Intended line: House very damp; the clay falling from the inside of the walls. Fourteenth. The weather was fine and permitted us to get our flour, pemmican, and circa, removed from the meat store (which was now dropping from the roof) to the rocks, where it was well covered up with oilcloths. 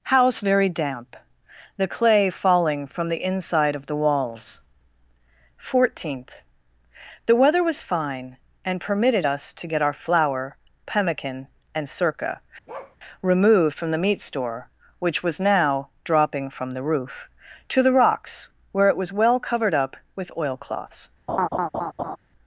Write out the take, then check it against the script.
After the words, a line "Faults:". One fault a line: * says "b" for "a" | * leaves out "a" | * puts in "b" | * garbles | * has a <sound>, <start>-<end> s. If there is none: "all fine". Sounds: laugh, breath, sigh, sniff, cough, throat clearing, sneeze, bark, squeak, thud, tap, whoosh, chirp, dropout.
House very damp; the clay falling from the inside of the walls. Fourteenth. The weather was fine and permitted us to get our flour, pemmican, and circa, removed from the meat store (which was now dropping from the roof) to the rocks, where it was well covered up with oilcloths.
Faults:
* has a bark, 12.7-13.0 s
* has a laugh, 21.3-22.2 s